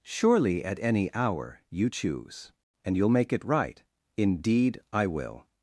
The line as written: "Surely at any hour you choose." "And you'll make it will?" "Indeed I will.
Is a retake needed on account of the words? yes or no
yes